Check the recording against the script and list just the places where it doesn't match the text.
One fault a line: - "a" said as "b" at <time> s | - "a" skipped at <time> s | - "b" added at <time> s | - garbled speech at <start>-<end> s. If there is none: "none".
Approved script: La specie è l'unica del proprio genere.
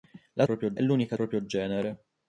- "specie" said as "proprio" at 0.4 s
- "del" skipped at 1.2 s